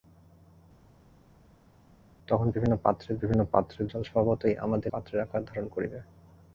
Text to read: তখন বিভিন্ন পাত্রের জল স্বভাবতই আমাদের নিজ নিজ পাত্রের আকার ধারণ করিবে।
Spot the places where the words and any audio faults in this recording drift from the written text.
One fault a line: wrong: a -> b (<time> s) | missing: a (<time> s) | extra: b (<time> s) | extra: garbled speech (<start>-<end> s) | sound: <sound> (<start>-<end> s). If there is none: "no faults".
extra: বিভিন্ন পাত্রের (3.2 s)
missing: নিজ নিজ (4.9 s)